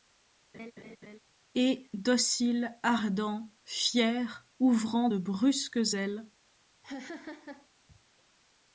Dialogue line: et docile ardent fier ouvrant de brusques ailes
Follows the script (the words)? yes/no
yes